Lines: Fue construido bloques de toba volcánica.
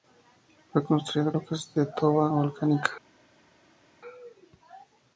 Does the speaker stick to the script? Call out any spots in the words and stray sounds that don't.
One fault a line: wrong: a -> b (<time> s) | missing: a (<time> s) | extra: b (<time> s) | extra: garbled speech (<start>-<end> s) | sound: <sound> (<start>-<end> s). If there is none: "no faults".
no faults